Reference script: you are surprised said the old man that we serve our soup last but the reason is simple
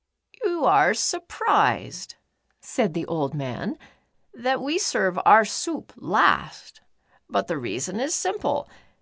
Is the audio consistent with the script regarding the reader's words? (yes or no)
yes